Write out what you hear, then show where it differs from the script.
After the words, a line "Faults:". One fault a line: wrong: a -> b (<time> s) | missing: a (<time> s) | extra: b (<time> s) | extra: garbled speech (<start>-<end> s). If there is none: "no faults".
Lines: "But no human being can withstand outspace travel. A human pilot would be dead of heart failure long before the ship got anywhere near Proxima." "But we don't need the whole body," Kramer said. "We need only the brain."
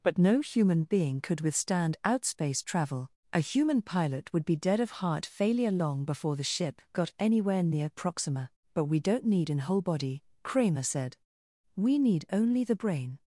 "But no human being could withstand outspace travel. A human pilot would be dead of heart failure long before the ship got anywhere near Proxima." "But we don't need an whole body," Kramer said. "We need only the brain."
Faults:
wrong: can -> could (1.2 s)
wrong: the -> an (9.5 s)